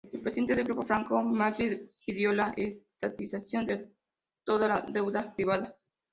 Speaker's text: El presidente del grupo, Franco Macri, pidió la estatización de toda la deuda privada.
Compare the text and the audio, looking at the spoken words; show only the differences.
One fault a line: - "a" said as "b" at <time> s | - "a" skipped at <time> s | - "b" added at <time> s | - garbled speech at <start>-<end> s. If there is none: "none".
none